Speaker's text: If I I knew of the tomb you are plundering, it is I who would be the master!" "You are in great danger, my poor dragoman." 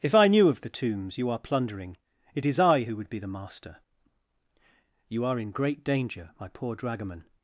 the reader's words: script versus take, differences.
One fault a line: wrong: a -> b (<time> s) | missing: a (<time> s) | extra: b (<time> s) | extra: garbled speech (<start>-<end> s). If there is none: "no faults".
missing: I (0.3 s)
wrong: tomb -> tombs (0.7 s)